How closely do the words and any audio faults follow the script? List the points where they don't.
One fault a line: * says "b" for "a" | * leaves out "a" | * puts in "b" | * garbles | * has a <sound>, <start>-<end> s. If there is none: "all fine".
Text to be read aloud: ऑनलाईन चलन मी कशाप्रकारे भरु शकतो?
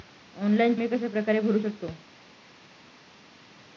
* leaves out "चलन"